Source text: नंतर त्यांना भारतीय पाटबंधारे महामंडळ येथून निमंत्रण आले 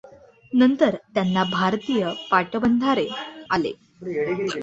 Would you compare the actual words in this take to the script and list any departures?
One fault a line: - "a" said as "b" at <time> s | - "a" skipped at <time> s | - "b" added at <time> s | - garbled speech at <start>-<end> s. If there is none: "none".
- "महामंडळ येथून निमंत्रण" skipped at 3.1 s